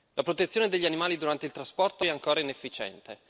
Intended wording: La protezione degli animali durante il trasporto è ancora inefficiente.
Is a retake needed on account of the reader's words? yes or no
no